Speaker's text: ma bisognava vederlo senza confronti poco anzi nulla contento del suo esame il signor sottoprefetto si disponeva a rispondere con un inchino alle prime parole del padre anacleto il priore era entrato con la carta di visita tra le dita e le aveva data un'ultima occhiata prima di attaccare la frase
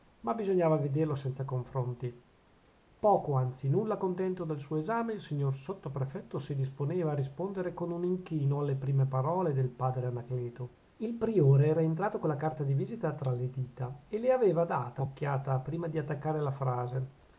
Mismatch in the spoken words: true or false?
true